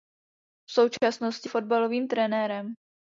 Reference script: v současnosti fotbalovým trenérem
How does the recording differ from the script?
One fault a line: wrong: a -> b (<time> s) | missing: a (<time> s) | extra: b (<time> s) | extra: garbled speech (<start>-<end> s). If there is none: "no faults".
no faults